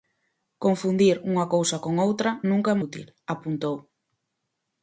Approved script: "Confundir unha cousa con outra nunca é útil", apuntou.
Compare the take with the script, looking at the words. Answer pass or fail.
pass